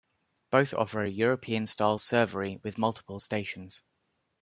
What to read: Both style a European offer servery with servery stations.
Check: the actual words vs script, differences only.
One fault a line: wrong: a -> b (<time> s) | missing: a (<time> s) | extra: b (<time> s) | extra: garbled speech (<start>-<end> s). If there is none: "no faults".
wrong: style -> offer (0.7 s)
wrong: offer -> style (1.7 s)
wrong: servery -> multiple (2.8 s)